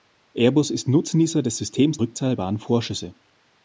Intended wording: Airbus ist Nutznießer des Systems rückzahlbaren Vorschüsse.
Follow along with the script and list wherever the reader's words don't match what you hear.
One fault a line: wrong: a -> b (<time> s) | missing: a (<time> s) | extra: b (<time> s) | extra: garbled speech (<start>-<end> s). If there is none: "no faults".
no faults